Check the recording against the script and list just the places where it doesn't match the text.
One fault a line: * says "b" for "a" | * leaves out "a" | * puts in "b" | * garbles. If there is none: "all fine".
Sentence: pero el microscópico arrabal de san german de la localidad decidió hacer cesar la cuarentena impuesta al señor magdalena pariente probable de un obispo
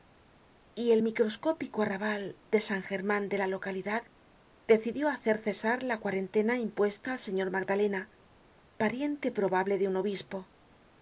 * says "y" for "pero"